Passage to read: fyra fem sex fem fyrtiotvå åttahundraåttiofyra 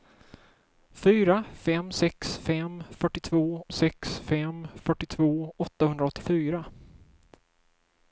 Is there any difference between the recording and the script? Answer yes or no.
yes